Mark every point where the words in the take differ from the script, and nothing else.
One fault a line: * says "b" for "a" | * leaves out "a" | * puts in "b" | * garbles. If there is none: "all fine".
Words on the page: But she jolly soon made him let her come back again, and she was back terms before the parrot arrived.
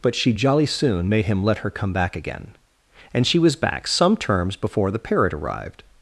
* puts in "some"